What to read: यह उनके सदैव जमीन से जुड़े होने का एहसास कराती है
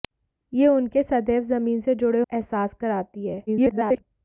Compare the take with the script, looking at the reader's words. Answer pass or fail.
fail